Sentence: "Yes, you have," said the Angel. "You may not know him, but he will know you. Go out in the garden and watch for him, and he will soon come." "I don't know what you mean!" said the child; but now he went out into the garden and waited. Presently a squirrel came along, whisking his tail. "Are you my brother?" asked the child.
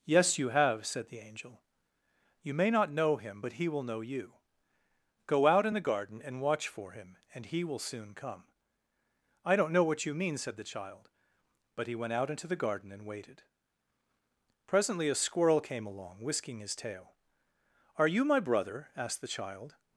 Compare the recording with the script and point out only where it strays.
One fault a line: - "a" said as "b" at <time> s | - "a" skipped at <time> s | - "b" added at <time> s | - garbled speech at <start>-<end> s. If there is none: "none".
- "now" skipped at 11.9 s